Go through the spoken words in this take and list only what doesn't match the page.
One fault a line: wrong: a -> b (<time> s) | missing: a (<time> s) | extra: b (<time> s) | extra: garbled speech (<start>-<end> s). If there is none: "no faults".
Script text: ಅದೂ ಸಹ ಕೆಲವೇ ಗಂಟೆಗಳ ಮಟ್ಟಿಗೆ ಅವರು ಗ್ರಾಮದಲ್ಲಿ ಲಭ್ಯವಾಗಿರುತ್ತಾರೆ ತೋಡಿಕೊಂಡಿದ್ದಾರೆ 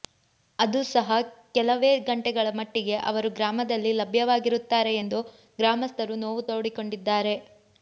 extra: ಎಂದು ಗ್ರಾಮಸ್ಥರು ನೋವು (5.0 s)